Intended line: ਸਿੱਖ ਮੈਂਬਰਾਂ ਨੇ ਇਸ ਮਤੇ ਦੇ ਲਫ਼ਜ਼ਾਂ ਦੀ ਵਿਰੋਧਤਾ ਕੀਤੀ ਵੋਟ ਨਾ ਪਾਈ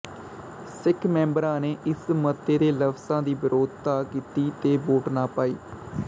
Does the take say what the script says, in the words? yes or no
no